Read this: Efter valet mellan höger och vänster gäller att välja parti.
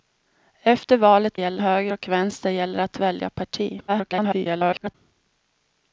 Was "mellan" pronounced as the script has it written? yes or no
no